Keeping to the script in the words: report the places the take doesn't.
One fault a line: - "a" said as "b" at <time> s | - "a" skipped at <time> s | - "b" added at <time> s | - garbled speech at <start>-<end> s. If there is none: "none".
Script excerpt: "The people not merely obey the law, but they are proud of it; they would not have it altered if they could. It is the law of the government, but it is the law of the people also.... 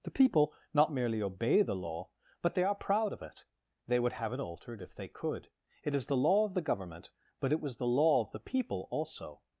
- "not" skipped at 4.1 s
- "is" said as "was" at 7.6 s